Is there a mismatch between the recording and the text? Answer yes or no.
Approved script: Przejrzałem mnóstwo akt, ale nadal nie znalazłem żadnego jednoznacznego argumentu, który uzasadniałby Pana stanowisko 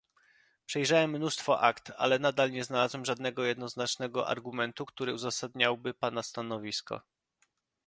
no